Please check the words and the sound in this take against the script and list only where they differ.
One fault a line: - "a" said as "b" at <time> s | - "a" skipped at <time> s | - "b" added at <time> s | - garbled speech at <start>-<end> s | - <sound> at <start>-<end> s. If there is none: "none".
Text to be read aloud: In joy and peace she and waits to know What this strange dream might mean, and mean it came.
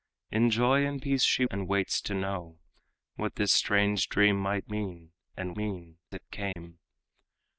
- dropout at 6.5-6.6 s